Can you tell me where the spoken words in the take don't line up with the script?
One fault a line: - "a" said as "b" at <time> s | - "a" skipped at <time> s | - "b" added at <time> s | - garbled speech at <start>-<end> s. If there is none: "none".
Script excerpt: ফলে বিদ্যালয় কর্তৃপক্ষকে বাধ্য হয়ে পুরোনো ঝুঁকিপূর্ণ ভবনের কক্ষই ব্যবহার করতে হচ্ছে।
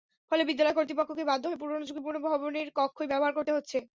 none